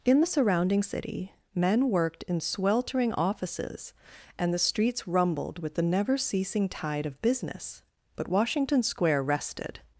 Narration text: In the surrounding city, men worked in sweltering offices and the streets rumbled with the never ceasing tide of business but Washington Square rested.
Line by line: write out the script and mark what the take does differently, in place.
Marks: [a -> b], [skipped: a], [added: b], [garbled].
In the surrounding city, men worked in sweltering offices and the streets rumbled with the never ceasing tide of business but Washington Square rested.